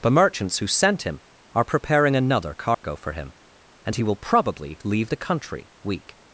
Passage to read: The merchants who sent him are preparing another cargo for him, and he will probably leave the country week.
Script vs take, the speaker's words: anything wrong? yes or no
no